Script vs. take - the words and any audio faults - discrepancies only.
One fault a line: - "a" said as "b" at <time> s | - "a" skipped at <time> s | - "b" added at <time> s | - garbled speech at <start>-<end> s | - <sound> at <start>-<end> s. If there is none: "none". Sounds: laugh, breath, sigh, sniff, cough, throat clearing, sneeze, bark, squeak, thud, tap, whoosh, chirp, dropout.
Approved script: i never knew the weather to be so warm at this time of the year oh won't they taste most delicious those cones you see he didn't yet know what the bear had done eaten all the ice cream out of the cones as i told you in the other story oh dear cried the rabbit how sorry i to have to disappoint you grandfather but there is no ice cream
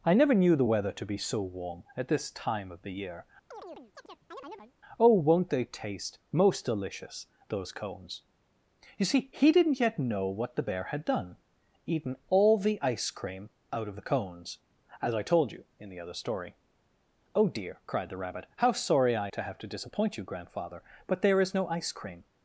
- chirp at 3.5-4.7 s